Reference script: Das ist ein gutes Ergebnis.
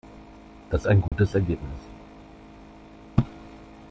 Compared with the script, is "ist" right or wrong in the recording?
wrong